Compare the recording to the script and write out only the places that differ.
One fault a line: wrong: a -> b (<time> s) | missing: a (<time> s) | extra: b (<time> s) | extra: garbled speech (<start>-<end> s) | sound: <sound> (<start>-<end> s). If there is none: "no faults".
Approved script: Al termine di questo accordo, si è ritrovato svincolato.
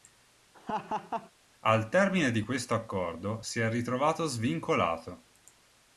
sound: laugh (0.5-1.3 s)